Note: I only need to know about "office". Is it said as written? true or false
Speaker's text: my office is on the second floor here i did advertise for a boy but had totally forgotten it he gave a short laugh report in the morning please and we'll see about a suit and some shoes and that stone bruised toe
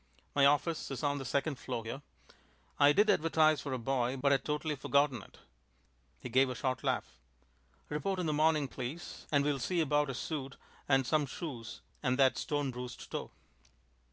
true